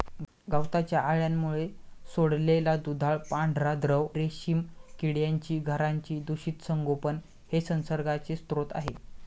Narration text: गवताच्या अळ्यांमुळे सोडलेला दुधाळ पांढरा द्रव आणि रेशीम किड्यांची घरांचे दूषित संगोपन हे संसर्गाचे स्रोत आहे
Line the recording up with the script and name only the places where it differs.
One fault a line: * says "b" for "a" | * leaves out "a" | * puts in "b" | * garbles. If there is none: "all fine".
* leaves out "आणि"